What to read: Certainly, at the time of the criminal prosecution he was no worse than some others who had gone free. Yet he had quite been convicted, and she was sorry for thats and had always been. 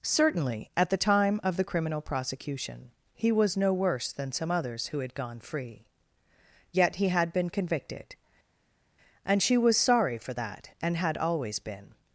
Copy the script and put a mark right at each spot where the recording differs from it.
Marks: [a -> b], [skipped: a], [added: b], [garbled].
Certainly, at the time of the criminal prosecution he was no worse than some others who had gone free. Yet he had [skipped: quite] been convicted, and she was sorry for [thats -> that] and had always been.